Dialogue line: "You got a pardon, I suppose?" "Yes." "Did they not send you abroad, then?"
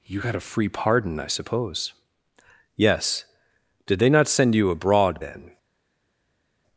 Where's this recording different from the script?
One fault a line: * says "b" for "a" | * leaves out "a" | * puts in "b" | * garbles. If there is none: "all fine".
* puts in "free"